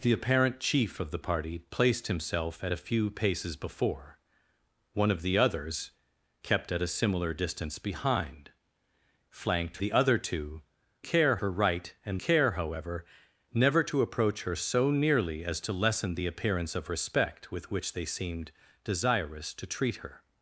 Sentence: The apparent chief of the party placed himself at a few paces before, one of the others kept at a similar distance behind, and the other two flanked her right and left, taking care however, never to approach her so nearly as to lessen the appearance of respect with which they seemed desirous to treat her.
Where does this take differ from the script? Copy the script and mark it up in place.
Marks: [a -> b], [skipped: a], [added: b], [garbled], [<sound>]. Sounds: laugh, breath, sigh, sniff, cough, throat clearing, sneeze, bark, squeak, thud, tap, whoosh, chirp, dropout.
The apparent chief of the party placed himself at a few paces before, one of the others kept at a similar distance behind, [and -> flanked] the other two [flanked -> care] her right and [skipped: left, taking] care however, never to approach her so nearly as to lessen the appearance of respect with which they seemed desirous to treat her.